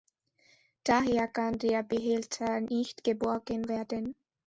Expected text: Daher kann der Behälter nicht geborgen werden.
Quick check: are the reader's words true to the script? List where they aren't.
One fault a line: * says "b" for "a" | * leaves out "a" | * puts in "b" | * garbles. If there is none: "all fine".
all fine